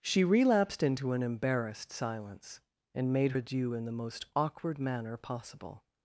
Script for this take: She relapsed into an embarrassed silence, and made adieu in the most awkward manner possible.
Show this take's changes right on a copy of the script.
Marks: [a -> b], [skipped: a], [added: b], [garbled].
She relapsed into an embarrassed silence, and made adieu in the most awkward manner possible.